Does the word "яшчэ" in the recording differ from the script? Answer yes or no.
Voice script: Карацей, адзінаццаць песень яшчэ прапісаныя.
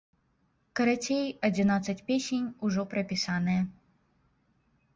yes